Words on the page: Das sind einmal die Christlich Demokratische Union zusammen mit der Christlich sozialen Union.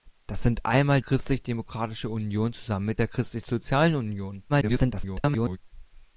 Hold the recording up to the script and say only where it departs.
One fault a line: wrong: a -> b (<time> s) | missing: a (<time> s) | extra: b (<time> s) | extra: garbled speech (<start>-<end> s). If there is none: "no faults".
missing: die (1.0 s)
extra: garbled speech (4.5-5.6 s)